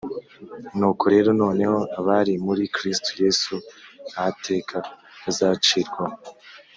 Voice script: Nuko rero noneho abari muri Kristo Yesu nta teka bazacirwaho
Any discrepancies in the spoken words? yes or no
no